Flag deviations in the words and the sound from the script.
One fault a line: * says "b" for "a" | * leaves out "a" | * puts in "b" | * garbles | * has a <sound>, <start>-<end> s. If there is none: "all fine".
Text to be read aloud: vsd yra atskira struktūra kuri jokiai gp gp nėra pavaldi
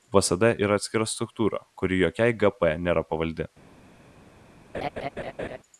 * leaves out "gp"
* has a laugh, 4.7-5.6 s